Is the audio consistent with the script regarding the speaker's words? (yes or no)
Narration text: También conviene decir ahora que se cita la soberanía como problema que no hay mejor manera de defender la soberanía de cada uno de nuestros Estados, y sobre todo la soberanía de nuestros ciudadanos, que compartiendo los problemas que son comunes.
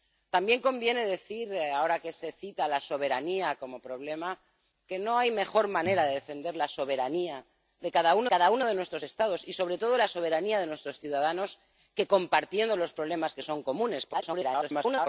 no